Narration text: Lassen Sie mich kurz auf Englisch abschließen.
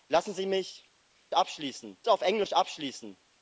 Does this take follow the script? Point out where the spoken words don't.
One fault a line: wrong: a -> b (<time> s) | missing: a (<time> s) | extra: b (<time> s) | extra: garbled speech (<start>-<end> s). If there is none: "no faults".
wrong: kurz -> abschließen (1.3 s)